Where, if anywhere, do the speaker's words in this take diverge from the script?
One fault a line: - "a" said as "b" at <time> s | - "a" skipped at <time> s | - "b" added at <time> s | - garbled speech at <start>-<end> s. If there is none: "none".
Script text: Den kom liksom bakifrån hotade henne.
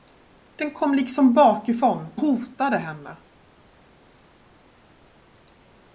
none